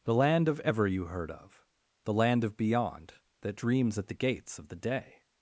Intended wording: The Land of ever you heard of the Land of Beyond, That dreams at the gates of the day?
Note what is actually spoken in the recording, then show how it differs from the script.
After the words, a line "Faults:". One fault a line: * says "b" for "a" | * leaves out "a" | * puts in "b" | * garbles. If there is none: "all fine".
The Land of ever you heard of the Land of Beyond, That dreams at the gates of the day?
Faults:
all fine